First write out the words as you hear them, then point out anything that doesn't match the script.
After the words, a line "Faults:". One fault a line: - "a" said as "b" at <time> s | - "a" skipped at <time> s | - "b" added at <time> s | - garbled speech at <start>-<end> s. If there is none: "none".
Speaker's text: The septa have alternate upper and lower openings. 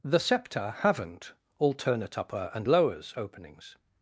The septa haven't alternate upper and lowers openings.
Faults:
- "have" said as "haven't" at 0.8 s
- "lower" said as "lowers" at 2.7 s